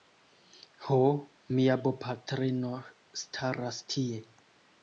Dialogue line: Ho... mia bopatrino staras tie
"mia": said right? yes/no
yes